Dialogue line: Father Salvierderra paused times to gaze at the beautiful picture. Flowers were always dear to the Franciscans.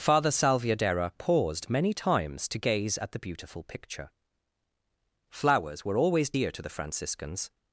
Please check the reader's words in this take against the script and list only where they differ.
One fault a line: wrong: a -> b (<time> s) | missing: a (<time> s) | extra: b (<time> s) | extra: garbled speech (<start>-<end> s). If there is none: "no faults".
extra: many (1.7 s)